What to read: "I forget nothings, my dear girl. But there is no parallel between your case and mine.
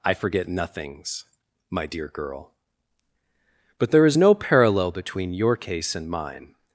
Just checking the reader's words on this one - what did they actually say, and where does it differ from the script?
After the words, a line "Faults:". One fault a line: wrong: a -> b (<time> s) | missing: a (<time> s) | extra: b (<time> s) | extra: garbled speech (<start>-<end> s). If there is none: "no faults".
"I forget nothings, my dear girl. But there is no parallel between your case and mine.
Faults:
no faults